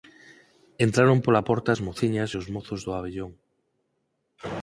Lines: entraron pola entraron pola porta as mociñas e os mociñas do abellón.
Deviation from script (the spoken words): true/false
true